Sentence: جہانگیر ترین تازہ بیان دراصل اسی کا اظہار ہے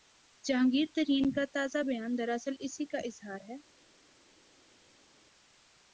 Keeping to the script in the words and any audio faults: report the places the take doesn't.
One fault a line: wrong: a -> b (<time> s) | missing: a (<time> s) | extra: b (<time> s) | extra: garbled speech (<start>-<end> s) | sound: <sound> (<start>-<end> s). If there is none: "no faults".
extra: کا (1.3 s)